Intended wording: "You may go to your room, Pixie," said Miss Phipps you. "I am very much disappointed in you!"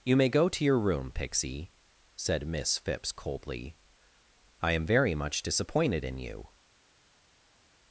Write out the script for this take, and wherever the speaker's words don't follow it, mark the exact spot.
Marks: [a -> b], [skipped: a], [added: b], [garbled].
"You may go to your room, Pixie," said Miss Phipps [you. -> coldly] "I am very much disappointed in you!"